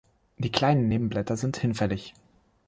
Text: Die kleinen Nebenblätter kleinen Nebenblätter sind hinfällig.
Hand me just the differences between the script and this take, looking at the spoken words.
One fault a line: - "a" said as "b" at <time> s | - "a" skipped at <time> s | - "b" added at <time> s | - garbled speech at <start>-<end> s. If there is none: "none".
- "kleinen Nebenblätter" skipped at 1.4 s